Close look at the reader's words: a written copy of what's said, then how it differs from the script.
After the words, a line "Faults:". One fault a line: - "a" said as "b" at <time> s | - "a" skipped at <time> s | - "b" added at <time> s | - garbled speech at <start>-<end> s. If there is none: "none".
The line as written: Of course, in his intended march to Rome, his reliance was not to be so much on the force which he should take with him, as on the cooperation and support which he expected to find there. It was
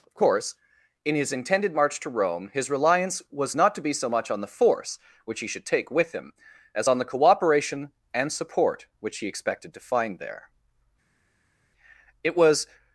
Of course, in his intended march to Rome, his reliance was not to be so much on the force which he should take with him, as on the cooperation and support which he expected to find there. It was
Faults:
none